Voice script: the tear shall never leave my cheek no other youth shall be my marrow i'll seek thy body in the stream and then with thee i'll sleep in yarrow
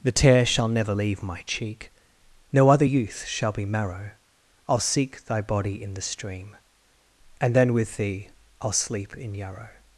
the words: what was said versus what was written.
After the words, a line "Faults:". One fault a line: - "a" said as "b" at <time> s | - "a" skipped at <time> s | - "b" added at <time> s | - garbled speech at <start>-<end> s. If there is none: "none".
the tear shall never leave my cheek no other youth shall be marrow i'll seek thy body in the stream and then with thee i'll sleep in yarrow
Faults:
- "my" skipped at 3.6 s